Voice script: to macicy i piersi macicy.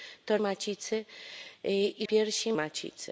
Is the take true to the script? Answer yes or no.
yes